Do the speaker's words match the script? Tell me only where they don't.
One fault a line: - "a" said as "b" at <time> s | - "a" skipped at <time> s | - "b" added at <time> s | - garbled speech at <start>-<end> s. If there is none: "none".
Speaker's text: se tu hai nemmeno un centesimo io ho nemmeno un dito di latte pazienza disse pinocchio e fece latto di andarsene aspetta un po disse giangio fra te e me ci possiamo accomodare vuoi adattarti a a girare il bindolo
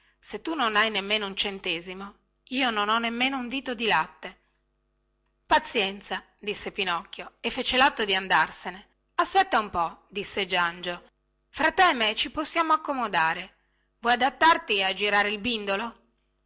- "non" added at 0.6 s
- "non" added at 2.7 s
- "a" skipped at 14.9 s